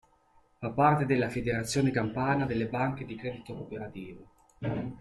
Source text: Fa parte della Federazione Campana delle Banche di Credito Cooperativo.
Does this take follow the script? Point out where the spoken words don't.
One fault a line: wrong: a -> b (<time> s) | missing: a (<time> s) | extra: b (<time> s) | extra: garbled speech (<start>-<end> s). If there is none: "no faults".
no faults